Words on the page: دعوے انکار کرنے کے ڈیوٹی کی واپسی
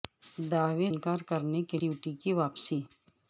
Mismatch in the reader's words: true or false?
false